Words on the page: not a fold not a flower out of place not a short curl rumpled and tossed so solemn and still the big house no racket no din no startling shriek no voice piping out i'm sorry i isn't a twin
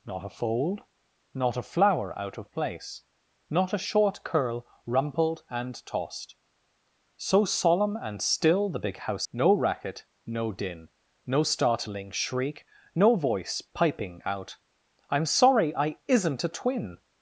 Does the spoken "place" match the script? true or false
true